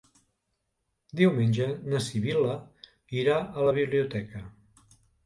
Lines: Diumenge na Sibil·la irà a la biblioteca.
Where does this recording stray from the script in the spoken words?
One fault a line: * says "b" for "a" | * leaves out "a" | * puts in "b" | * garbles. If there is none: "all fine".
all fine